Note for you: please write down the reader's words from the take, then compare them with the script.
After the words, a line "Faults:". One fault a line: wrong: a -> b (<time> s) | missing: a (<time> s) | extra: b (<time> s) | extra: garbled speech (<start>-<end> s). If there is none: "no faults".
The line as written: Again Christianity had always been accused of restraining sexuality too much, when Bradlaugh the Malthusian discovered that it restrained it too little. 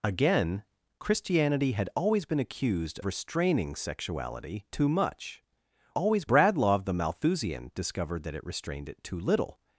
Again Christianity had always been accused restraining sexuality too much, always Bradlaugh the Malthusian discovered that it restrained it too little.
Faults:
missing: of (3.0 s)
wrong: when -> always (5.9 s)